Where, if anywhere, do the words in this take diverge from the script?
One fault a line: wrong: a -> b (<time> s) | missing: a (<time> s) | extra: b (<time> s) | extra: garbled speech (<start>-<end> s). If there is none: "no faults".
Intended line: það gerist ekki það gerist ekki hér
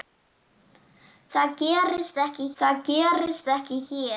no faults